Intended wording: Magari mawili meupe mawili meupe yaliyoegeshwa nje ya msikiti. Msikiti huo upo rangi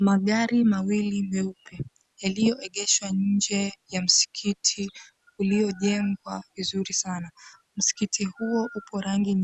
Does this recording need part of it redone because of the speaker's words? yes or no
yes